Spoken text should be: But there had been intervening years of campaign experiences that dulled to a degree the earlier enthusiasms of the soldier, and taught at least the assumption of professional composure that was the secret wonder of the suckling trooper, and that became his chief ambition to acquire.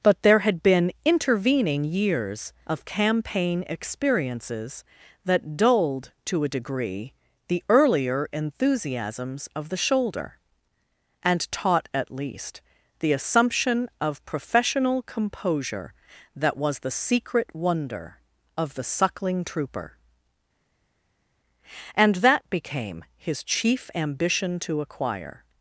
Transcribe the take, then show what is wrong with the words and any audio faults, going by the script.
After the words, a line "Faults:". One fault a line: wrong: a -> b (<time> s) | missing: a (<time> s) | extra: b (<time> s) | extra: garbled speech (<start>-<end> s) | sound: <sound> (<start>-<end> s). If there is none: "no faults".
But there had been intervening years of campaign experiences that dulled to a degree the earlier enthusiasms of the shoulder, and taught at least the assumption of professional composure that was the secret wonder of the suckling trooper, and that became his chief ambition to acquire.
Faults:
wrong: soldier -> shoulder (9.8 s)